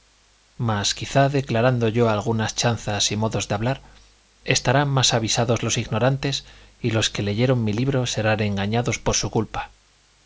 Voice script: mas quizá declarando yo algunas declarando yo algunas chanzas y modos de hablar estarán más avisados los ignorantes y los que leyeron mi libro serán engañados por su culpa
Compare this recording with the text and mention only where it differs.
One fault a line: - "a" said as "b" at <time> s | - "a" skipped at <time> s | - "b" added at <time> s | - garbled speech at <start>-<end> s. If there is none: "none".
- "declarando yo algunas" skipped at 2.5 s